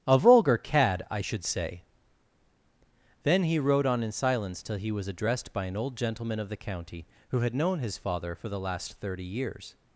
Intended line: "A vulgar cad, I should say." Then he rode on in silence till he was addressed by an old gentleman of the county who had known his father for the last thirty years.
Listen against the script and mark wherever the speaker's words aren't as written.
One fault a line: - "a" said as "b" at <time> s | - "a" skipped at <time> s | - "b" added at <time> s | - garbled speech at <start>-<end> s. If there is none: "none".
none